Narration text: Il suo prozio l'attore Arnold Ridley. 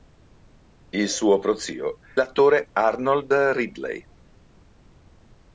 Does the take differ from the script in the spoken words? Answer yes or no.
no